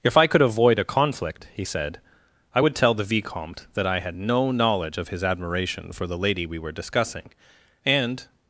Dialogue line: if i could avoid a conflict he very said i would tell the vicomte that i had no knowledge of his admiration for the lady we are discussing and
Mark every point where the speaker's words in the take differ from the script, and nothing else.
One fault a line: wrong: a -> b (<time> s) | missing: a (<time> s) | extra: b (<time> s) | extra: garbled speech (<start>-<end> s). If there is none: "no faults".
missing: very (1.6 s)
wrong: are -> were (6.6 s)